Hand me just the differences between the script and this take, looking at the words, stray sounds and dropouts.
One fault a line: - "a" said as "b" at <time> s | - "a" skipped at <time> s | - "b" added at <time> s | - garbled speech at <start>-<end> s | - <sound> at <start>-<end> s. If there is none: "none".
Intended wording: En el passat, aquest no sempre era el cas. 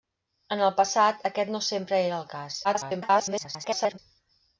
- garbled speech at 2.6-4.0 s